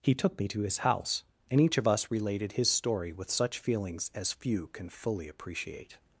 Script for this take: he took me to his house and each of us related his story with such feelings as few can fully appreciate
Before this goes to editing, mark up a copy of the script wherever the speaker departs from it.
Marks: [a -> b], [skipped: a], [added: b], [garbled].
he took me to his house and each of us related his story with such feelings as few can fully appreciate